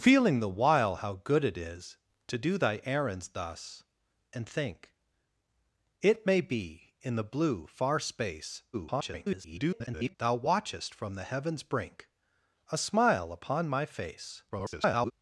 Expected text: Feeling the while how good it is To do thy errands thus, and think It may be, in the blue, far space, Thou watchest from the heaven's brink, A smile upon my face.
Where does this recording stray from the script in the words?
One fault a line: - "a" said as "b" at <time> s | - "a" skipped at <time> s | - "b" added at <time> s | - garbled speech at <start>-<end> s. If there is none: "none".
- garbled speech at 8.7-10.1 s
- garbled speech at 14.5-15.1 s